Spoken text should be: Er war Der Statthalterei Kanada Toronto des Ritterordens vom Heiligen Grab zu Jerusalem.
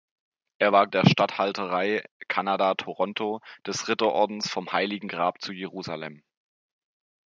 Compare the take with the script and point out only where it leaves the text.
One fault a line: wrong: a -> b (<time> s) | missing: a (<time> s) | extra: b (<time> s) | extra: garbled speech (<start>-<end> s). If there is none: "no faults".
no faults